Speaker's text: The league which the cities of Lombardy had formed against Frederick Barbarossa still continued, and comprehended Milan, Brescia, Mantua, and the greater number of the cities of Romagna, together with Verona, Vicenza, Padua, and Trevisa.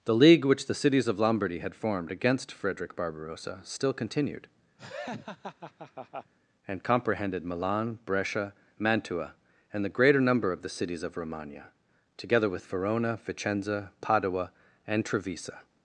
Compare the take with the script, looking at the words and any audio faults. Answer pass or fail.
fail